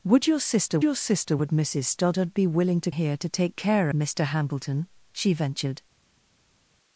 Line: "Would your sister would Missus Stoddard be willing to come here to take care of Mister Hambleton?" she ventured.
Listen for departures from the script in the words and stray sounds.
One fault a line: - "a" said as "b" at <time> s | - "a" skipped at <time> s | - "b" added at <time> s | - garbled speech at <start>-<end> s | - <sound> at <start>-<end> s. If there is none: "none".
- "your sister" added at 0.8 s
- "come" skipped at 2.9 s
- "of" skipped at 3.9 s